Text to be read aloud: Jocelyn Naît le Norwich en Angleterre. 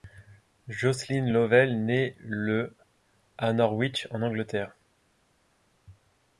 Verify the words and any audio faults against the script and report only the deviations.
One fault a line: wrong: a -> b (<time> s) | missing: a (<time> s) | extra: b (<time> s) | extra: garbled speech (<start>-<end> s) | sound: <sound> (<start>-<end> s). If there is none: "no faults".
extra: Lovell (1.3 s)
extra: à (3.4 s)